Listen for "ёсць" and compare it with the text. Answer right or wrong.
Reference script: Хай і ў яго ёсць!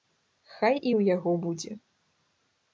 wrong